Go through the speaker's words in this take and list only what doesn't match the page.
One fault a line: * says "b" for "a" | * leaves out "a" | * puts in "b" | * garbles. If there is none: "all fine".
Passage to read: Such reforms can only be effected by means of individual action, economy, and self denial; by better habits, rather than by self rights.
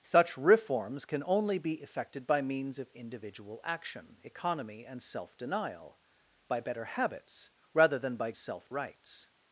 all fine